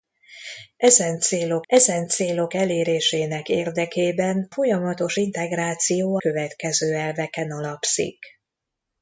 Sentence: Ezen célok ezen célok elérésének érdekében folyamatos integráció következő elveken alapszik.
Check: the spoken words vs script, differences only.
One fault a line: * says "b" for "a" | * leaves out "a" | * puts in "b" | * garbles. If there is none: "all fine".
all fine